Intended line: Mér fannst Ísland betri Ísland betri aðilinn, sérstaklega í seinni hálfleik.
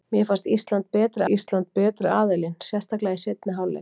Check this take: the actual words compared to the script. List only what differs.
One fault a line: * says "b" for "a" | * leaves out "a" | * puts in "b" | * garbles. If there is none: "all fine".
all fine